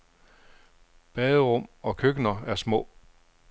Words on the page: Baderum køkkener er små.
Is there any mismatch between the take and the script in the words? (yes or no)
yes